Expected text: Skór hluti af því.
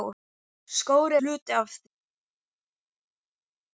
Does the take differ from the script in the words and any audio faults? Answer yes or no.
no